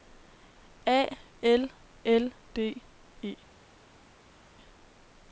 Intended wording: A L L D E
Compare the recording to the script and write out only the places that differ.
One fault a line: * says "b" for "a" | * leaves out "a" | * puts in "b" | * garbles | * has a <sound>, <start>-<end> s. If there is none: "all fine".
all fine